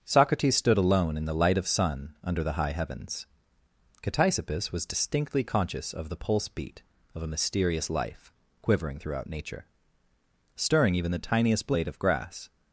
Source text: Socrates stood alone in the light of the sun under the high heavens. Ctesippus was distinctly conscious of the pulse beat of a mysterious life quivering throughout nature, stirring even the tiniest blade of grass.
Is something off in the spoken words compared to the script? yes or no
yes